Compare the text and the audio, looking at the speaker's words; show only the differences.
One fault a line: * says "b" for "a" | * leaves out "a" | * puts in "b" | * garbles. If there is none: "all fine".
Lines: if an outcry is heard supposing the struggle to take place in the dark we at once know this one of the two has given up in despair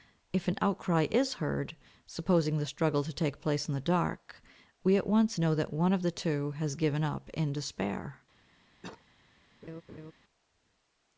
* says "that" for "this"